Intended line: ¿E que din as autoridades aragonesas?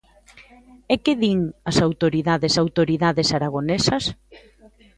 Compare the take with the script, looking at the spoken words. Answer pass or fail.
fail